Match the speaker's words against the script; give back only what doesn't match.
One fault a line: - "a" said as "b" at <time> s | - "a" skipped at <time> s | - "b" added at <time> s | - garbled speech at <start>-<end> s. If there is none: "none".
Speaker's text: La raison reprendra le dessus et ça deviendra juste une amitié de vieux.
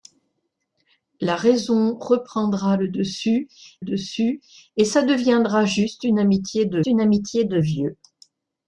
- "dessus" added at 3.8 s
- "une amitié de" added at 6.9 s